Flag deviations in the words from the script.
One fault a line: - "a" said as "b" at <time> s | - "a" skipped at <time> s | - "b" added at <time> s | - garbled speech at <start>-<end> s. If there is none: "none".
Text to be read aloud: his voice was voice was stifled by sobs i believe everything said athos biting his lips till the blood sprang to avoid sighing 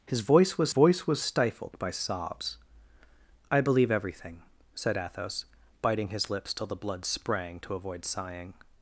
none